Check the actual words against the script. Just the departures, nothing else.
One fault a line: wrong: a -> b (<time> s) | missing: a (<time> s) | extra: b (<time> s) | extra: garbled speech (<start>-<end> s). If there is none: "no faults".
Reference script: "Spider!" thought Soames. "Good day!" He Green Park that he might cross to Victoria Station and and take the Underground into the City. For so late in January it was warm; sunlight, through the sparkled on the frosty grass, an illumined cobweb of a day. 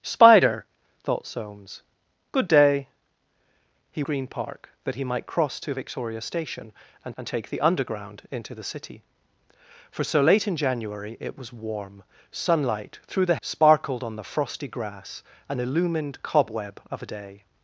no faults